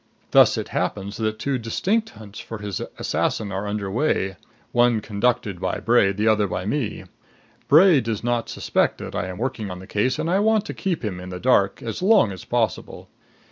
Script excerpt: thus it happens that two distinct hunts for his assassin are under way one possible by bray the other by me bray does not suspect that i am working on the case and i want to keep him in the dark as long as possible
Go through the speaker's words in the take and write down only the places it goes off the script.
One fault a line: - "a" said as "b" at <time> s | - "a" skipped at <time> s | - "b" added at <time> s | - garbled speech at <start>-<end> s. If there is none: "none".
- "possible" said as "conducted" at 5.0 s